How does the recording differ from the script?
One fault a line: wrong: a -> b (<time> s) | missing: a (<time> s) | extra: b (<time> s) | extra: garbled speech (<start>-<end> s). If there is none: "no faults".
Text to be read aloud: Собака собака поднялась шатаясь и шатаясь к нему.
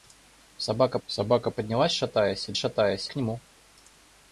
no faults